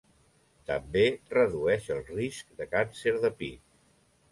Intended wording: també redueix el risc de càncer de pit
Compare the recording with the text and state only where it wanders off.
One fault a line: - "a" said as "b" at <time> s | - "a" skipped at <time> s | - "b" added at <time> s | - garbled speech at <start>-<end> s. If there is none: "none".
none